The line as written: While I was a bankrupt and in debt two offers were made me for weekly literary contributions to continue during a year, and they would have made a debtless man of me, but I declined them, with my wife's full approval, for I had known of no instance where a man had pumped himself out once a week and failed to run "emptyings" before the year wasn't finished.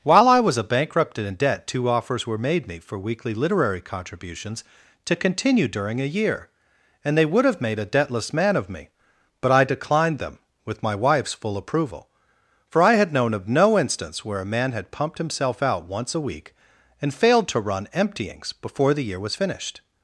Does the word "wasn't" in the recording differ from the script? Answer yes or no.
yes